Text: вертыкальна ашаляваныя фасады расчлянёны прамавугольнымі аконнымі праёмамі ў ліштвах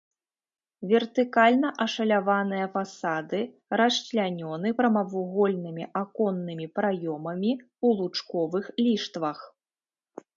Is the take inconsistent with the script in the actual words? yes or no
yes